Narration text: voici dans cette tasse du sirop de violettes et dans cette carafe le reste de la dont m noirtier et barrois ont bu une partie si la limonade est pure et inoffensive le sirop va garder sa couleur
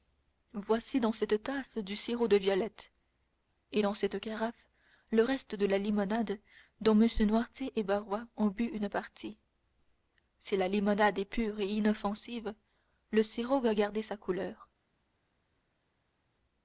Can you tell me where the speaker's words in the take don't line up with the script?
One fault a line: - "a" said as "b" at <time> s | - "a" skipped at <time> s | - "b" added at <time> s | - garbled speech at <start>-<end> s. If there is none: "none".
- "limonade" added at 5.8 s